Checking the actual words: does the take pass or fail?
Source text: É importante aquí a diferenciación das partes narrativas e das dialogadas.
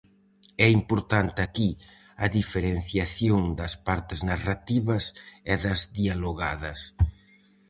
pass